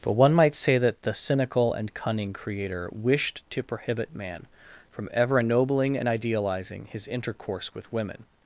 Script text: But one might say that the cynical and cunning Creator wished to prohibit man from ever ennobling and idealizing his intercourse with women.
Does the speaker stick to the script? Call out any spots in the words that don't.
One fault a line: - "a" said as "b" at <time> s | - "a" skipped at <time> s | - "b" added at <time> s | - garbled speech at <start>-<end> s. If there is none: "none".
none